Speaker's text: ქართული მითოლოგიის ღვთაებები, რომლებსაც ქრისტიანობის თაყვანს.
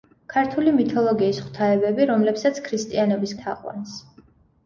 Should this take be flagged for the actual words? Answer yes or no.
no